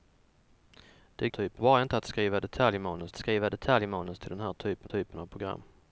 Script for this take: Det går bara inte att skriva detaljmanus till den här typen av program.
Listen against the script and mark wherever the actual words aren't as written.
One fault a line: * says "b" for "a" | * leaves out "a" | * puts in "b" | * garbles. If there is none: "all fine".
* says "typen" for "går"
* puts in "skriva detaljmanus"
* puts in "typen"